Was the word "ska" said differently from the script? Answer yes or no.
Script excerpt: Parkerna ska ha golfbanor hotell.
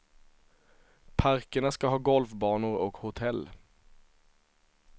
no